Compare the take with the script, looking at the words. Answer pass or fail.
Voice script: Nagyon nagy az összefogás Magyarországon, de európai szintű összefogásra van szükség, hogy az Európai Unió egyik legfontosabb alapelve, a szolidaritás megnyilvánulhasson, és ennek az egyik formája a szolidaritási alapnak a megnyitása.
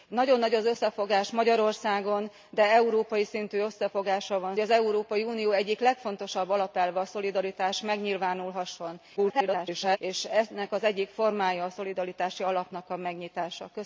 fail